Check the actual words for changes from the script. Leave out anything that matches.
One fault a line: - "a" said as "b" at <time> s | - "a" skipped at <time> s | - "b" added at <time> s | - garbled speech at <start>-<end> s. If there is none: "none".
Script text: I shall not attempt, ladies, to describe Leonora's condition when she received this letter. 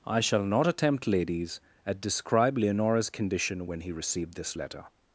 - "to" said as "at" at 1.9 s
- "she" said as "he" at 3.8 s